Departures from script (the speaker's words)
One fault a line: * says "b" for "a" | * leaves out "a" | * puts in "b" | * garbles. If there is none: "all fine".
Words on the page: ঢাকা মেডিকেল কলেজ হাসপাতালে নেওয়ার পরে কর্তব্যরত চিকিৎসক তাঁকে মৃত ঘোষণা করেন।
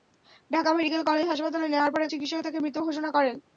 * leaves out "কর্তব্যরত"